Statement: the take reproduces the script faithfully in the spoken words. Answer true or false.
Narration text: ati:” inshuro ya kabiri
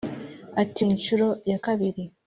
true